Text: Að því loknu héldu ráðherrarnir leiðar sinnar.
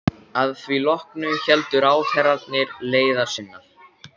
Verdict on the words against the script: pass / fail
pass